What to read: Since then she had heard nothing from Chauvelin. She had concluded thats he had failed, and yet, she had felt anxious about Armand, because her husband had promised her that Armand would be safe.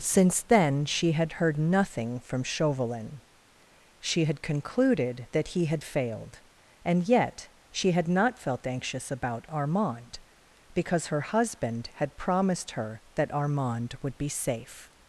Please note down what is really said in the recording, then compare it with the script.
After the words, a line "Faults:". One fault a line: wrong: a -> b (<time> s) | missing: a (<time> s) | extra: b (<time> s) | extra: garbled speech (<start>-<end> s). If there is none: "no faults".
Since then she had heard nothing from Chauvelin. She had concluded that he had failed, and yet, she had not felt anxious about Armand, because her husband had promised her that Armand would be safe.
Faults:
wrong: thats -> that (5.3 s)
extra: not (8.1 s)